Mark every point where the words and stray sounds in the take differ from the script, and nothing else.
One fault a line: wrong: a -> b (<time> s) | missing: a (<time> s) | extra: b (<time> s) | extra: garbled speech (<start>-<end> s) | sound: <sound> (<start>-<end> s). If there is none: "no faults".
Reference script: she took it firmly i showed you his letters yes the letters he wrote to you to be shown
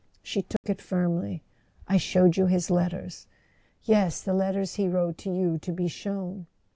sound: dropout (0.6-0.6 s)